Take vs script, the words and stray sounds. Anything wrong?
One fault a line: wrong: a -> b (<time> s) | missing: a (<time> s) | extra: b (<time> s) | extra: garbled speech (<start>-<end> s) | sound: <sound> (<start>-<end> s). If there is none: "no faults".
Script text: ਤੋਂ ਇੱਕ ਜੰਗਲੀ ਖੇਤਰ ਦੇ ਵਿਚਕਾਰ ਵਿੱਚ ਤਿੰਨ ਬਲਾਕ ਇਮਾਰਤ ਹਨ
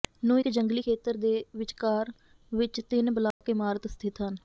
wrong: ਤੋਂ -> ਨੂੰ (0.2 s)
sound: dropout (3.3-3.4 s)
extra: ਸਥਿਤ (3.9 s)